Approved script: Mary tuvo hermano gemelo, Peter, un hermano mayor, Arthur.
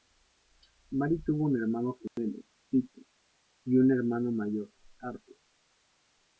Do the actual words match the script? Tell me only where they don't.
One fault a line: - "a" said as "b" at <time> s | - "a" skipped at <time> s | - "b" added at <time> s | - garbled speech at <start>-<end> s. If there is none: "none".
- "un" added at 1.4 s
- "y" added at 3.6 s